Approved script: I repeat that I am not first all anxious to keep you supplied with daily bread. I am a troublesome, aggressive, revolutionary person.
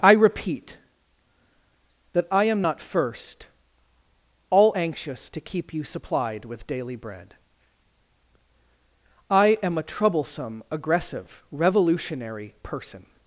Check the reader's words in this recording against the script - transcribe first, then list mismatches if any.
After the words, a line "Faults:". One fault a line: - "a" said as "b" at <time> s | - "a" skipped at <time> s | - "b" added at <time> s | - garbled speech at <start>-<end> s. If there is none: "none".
I repeat that I am not first all anxious to keep you supplied with daily bread. I am a troublesome, aggressive, revolutionary person.
Faults:
none